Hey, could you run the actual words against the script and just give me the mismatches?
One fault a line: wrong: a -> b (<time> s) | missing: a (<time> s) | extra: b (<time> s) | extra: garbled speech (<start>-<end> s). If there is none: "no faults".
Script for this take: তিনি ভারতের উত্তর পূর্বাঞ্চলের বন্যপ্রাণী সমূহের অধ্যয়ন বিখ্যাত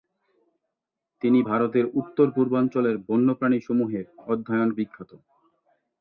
no faults